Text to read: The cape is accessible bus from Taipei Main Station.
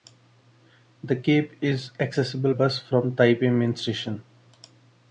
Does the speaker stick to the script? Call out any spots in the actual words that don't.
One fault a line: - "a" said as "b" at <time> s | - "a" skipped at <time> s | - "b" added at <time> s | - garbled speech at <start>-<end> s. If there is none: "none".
none